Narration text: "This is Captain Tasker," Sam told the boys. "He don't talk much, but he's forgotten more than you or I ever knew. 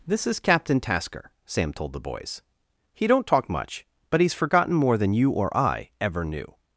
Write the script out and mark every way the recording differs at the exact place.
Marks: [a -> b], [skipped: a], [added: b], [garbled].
"This is Captain Tasker," Sam told the boys. "He don't talk much, but he's forgotten more than you or I ever knew.